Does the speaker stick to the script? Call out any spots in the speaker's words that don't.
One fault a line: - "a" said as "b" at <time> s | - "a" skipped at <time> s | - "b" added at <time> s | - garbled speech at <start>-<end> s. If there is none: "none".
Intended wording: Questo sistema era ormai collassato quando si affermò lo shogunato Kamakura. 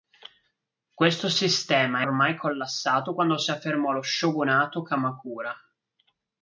- "era" skipped at 2.1 s